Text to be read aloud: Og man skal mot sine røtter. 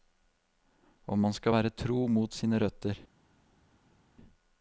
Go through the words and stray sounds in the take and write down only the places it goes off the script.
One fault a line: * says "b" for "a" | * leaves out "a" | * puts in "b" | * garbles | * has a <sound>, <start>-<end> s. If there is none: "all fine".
* puts in "være tro"